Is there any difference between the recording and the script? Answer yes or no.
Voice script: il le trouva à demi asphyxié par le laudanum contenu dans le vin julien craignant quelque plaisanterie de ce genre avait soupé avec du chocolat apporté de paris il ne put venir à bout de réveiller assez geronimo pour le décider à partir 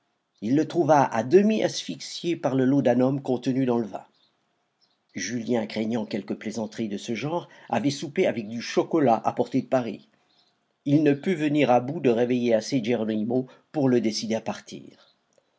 no